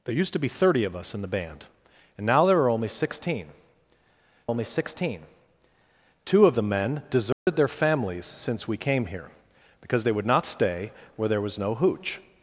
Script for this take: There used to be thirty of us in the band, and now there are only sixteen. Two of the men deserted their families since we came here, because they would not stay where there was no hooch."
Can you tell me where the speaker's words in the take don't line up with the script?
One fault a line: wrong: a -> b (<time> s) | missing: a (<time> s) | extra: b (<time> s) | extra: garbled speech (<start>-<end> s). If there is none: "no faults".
extra: only sixteen (4.5 s)